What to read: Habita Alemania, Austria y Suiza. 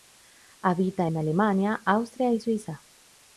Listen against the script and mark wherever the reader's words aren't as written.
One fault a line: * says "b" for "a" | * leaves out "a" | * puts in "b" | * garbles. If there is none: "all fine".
* puts in "en"